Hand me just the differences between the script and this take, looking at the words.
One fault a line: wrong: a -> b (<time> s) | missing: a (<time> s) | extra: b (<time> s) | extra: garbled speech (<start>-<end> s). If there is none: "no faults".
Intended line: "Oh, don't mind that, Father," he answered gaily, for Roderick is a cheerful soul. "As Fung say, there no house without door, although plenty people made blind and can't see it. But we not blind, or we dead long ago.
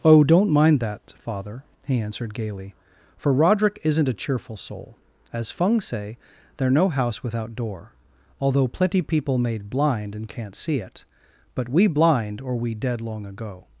wrong: is -> isn't (3.8 s)
missing: not (11.8 s)